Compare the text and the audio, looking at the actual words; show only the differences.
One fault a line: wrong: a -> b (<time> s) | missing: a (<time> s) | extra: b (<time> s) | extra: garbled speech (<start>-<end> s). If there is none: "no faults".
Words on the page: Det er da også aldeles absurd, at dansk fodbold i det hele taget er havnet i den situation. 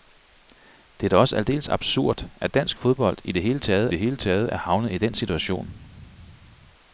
extra: det hele taget (3.9 s)